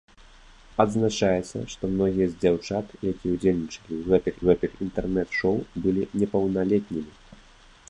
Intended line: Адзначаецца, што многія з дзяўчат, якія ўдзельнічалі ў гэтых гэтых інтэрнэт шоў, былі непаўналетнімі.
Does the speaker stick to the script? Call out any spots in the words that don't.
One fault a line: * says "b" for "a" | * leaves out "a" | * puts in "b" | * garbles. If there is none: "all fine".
all fine